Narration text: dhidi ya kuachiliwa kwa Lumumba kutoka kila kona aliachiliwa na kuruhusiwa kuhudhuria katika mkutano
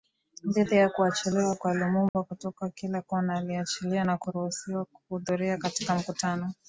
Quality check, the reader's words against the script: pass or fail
pass